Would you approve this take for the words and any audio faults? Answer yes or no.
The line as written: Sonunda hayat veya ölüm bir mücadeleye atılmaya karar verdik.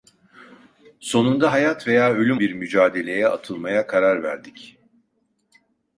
yes